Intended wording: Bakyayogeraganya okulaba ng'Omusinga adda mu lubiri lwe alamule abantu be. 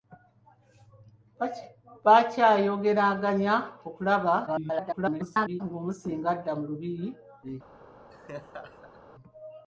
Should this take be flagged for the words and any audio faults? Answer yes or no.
yes